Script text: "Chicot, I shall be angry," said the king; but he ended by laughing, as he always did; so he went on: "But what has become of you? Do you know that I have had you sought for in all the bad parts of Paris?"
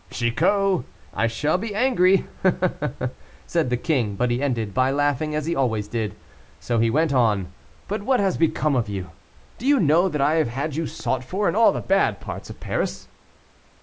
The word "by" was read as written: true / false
true